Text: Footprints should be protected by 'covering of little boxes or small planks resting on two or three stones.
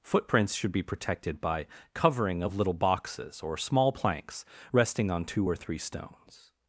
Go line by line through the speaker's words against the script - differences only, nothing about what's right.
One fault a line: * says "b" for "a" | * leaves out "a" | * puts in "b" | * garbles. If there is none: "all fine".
all fine